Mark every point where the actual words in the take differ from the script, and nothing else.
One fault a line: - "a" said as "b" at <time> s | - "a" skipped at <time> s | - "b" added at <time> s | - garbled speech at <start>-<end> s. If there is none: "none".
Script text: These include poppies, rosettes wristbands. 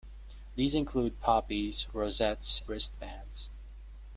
none